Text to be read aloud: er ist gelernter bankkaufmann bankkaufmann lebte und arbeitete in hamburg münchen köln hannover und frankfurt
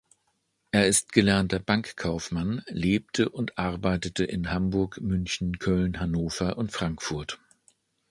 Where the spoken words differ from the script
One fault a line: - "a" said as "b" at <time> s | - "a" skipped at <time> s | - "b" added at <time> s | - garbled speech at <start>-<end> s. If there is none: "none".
- "bankkaufmann" skipped at 2.6 s